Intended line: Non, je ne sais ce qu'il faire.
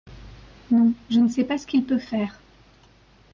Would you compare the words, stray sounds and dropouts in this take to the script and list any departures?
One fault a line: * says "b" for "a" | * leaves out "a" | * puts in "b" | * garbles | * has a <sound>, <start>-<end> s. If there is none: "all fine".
* puts in "pas"
* puts in "peut"